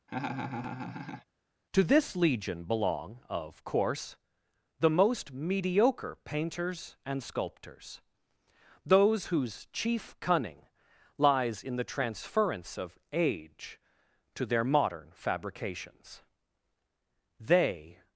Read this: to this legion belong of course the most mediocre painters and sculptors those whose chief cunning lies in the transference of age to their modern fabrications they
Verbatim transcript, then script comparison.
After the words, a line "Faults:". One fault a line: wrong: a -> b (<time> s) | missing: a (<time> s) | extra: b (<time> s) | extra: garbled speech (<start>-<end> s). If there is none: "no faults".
to this legion belong of course the most mediocre painters and sculptors those whose chief cunning lies in the transference of age to their modern fabrications they
Faults:
no faults